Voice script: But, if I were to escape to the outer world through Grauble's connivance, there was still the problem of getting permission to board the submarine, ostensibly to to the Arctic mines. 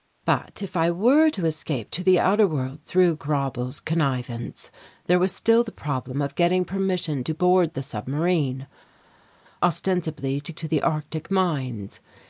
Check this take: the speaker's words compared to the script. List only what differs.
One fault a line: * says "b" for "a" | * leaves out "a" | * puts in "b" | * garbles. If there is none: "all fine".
all fine